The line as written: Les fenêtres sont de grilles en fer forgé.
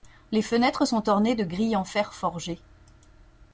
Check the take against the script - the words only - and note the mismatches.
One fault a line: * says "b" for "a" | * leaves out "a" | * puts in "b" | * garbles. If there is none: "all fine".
* puts in "ornées"